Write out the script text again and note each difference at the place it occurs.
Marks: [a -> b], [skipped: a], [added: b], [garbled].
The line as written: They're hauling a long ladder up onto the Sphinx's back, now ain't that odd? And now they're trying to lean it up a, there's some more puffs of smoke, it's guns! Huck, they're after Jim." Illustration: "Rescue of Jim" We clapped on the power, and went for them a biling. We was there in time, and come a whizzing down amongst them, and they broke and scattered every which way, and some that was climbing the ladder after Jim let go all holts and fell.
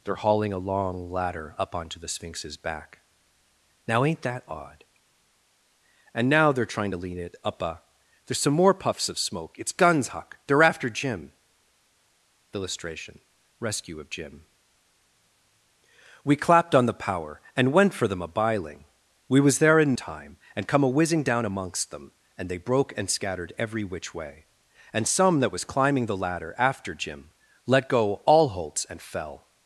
They're hauling a long ladder up onto the Sphinx's back, now ain't that odd? And now they're trying to lean it up a, there's some more puffs of smoke, it's guns! Huck, they're after Jim." Illustration: "Rescue of Jim" We clapped on the power, and went for them a biling. We was there in time, and come a whizzing down amongst them, and they broke and scattered every which way, and some that was climbing the ladder after Jim let go all holts and fell.